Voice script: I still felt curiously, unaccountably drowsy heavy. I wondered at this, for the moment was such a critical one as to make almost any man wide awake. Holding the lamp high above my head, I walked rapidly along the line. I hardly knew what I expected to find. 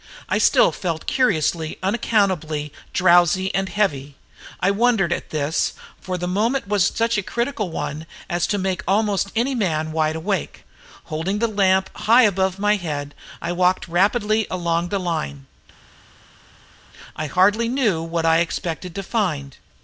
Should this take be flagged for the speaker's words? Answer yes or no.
yes